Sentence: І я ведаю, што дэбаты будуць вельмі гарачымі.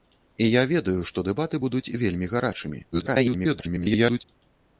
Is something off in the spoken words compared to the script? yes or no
yes